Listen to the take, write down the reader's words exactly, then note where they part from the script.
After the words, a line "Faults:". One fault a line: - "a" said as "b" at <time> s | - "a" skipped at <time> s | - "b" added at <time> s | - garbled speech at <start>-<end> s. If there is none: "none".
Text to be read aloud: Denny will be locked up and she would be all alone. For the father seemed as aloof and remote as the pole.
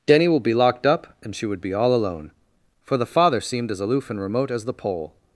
Denny will be locked up and she would be all alone. For the father seemed as aloof and remote as the pole.
Faults:
none